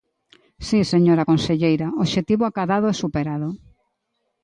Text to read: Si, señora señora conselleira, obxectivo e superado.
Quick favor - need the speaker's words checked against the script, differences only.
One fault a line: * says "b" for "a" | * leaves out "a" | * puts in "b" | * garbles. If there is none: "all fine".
* leaves out "señora"
* puts in "acadado"